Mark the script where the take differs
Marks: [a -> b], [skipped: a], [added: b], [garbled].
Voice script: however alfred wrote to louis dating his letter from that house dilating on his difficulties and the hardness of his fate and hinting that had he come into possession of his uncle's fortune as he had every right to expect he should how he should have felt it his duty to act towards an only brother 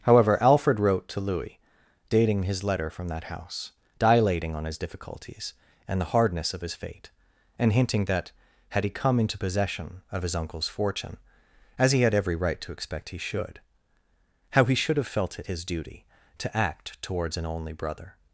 however alfred wrote to louis dating his letter from that house dilating on his difficulties and the hardness of his fate and hinting that had he come into possession of his uncle's fortune as he had every right to expect he should how he should have felt it his duty to act towards an only brother